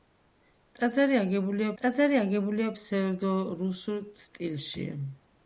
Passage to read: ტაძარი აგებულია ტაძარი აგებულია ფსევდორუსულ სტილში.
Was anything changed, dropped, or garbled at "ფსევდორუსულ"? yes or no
no